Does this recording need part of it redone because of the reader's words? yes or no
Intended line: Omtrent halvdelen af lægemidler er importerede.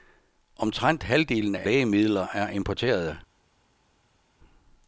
no